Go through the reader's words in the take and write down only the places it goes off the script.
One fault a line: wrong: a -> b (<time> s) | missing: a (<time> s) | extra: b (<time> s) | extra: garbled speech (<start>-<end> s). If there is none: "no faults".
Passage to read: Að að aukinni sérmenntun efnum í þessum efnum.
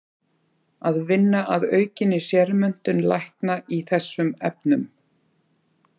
extra: vinna (1.1 s)
wrong: efnum -> lækna (3.1 s)